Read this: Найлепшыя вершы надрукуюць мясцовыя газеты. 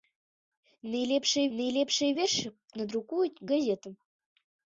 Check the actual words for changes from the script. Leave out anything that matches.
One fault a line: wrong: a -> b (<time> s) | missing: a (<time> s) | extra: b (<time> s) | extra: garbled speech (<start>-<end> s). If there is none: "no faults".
extra: найлепшыя (1.6 s)
missing: мясцовыя (3.4 s)